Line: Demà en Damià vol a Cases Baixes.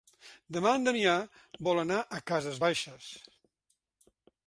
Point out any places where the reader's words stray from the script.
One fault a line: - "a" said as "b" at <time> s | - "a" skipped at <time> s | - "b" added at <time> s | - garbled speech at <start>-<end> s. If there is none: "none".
- "anar" added at 1.8 s